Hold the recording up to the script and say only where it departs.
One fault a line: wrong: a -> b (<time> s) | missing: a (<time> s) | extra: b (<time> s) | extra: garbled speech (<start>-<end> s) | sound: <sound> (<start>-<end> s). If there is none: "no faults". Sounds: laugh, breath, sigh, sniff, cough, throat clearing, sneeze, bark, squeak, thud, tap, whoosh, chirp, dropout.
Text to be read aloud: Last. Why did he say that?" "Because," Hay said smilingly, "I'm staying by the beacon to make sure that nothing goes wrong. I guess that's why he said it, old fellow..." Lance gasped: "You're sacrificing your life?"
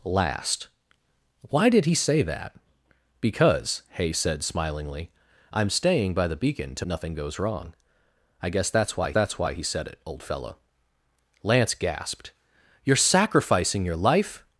missing: make sure that (6.8 s)
extra: that's why (9.1 s)